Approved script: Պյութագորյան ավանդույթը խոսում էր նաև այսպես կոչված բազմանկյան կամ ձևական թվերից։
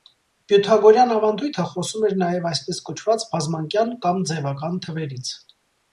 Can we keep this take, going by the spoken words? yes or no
yes